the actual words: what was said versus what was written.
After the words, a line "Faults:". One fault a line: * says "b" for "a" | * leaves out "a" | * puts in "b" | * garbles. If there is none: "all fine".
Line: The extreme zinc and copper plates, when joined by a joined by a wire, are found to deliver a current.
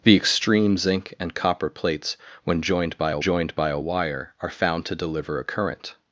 The extreme zinc and copper plates, when joined by a joined by a wire, are found to deliver a current.
Faults:
all fine